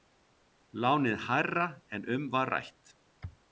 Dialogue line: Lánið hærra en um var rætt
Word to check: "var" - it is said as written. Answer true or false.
true